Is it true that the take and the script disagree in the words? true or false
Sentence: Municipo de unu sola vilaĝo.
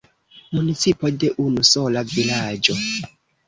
false